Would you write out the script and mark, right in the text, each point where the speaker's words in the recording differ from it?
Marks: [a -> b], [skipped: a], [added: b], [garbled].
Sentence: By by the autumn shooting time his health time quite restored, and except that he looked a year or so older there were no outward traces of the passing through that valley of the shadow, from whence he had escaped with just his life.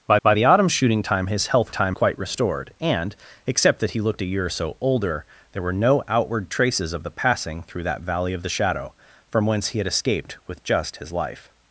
By by the autumn shooting time his health time quite restored, and except that he looked a year or so older there were no outward traces of the passing through that valley of the shadow, from whence he had escaped with just his life.